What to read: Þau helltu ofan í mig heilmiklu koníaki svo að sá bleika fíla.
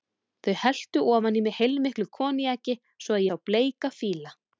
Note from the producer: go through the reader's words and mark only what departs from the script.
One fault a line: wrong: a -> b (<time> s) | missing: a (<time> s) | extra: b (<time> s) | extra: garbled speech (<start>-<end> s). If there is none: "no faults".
no faults